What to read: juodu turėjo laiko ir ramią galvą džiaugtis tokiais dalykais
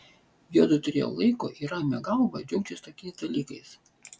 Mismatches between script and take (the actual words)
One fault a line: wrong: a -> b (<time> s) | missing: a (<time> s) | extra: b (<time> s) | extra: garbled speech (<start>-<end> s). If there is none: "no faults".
no faults